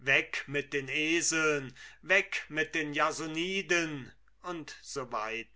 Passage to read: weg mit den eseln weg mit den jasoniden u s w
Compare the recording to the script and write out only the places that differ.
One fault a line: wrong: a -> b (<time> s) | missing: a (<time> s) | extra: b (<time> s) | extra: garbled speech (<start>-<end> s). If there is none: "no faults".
no faults